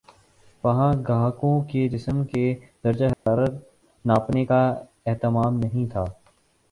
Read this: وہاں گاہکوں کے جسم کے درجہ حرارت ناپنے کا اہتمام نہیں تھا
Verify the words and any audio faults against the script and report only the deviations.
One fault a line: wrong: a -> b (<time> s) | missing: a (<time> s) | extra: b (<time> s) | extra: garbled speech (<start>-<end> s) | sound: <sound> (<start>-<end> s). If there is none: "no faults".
sound: dropout (3.1-3.3 s)